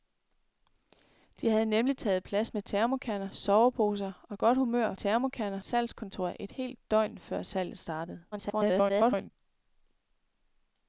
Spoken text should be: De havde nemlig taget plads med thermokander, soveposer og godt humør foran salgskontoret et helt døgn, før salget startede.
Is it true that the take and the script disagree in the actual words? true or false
true